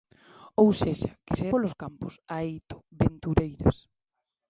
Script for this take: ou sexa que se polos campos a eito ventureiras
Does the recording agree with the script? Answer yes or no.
yes